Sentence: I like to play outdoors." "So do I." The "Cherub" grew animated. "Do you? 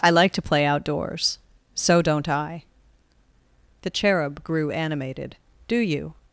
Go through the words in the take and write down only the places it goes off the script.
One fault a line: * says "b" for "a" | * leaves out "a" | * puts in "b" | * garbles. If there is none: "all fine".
* says "don't" for "do"